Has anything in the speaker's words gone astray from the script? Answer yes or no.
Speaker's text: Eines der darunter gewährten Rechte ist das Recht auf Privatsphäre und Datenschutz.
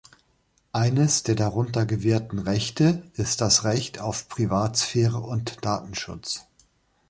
no